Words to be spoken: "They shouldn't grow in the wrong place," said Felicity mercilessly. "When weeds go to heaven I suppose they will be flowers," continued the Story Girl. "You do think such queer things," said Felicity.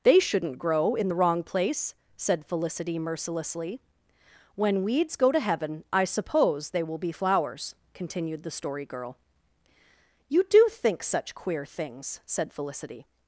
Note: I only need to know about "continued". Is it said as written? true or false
true